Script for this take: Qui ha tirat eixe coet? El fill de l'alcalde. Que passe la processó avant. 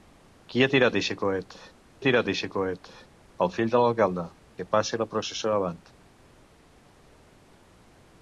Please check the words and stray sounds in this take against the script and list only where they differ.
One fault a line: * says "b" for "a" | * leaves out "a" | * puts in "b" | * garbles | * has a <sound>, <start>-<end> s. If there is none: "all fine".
* puts in "tirat eixe coet"